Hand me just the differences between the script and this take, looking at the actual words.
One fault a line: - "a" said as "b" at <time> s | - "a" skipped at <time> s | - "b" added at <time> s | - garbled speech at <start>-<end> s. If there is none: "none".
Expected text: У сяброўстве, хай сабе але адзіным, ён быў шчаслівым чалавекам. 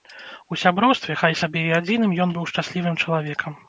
- "але" said as "і" at 1.7 s